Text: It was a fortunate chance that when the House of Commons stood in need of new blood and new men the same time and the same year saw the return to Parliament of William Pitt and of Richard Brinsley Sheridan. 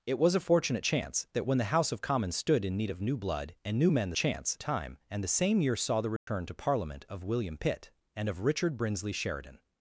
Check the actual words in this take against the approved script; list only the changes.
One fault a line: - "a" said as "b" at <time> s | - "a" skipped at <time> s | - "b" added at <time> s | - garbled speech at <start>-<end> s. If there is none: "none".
- "same" said as "chance" at 4.1 s